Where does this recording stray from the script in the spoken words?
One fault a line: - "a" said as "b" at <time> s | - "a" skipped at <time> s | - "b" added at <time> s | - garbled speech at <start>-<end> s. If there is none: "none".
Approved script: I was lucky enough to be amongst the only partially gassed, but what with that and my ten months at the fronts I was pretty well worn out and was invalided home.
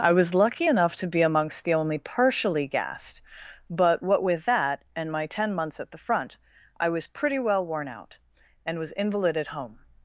- "fronts" said as "front" at 6.0 s